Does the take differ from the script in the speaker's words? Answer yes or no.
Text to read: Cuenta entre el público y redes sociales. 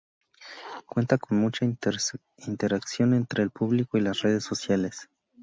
yes